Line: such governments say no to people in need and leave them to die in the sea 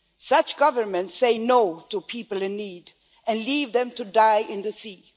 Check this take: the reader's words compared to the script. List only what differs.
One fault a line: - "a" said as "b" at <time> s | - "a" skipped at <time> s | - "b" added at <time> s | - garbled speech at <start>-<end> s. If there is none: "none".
none